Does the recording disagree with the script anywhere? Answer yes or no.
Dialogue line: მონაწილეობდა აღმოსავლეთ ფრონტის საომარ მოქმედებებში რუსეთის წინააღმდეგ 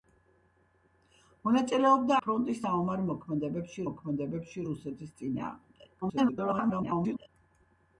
yes